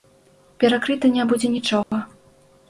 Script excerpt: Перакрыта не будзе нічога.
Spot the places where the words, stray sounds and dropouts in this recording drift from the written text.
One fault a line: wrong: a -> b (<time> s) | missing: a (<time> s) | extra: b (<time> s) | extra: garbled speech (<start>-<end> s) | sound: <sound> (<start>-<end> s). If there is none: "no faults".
sound: dropout (1.8-1.9 s)